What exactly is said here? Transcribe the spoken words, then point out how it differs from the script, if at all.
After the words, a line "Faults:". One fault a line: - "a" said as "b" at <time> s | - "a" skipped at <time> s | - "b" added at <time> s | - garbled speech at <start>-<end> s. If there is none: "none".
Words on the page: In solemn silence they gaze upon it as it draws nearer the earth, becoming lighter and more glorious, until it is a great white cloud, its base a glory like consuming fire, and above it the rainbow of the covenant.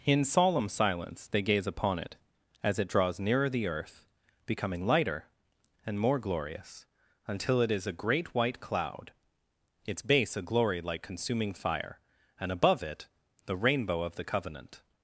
In solemn silence they gaze upon it as it draws nearer the earth, becoming lighter and more glorious, until it is a great white cloud, its base a glory like consuming fire, and above it the rainbow of the covenant.
Faults:
none